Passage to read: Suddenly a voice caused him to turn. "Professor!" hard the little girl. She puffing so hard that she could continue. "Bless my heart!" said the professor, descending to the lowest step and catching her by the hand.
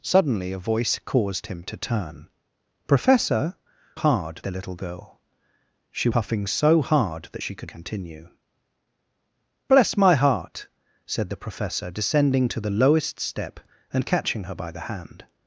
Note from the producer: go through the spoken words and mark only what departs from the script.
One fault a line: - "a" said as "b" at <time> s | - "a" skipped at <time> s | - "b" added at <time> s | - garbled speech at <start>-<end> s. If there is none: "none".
none